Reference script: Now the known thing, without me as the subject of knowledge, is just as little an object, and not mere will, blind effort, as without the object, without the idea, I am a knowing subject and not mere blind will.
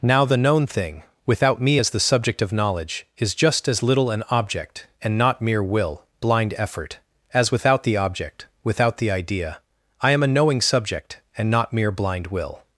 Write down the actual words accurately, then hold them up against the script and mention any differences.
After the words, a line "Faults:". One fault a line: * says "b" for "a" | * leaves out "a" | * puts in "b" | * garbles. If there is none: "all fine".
Now the known thing, without me as the subject of knowledge, is just as little an object, and not mere will, blind effort, as without the object, without the idea, I am a knowing subject and not mere blind will.
Faults:
all fine